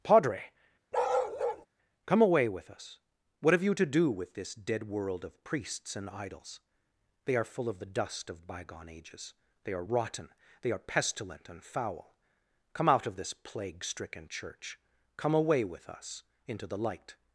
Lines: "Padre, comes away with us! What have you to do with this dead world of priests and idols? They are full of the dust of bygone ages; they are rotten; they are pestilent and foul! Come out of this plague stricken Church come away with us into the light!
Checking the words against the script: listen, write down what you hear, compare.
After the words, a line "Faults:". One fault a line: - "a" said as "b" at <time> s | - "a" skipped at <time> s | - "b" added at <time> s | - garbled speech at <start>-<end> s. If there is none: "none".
"Padre, come away with us! What have you to do with this dead world of priests and idols? They are full of the dust of bygone ages; they are rotten; they are pestilent and foul! Come out of this plague stricken Church come away with us into the light!
Faults:
- "comes" said as "come" at 2.1 s